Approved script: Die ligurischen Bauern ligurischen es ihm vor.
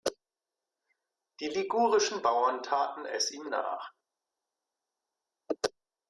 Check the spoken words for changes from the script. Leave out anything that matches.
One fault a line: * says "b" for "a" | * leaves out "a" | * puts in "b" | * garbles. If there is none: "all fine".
* says "taten" for "ligurischen"
* says "nach" for "vor"